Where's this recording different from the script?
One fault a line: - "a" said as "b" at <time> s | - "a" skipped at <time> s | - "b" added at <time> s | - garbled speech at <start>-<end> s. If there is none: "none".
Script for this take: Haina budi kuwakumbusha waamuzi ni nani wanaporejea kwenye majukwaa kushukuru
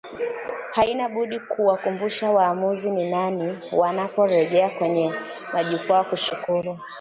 none